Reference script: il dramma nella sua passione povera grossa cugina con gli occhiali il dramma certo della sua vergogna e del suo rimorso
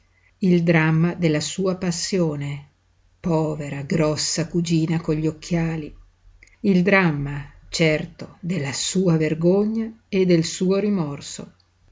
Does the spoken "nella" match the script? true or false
false